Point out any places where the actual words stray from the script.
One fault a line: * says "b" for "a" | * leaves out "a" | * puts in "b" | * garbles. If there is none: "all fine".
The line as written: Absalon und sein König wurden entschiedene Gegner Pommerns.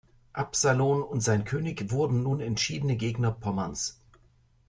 * puts in "nun"